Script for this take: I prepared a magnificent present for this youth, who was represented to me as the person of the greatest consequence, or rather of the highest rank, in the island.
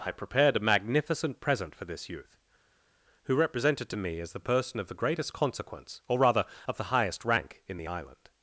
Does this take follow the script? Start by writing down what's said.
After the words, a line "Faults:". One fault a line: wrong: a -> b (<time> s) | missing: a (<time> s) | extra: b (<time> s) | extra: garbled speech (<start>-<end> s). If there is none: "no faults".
I prepared a magnificent present for this youth, who represented to me as the person of the greatest consequence, or rather of the highest rank, in the island.
Faults:
missing: was (3.4 s)